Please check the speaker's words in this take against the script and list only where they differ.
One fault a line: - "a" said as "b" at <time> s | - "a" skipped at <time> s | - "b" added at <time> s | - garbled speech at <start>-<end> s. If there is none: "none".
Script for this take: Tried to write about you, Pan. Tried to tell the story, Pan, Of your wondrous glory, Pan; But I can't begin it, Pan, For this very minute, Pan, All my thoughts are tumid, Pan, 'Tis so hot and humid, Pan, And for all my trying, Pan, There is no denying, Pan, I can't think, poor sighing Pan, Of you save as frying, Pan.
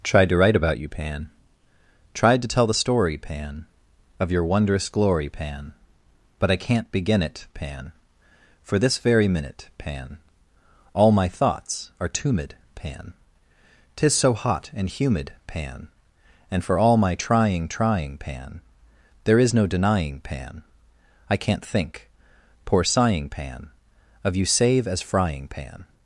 - "trying" added at 17.7 s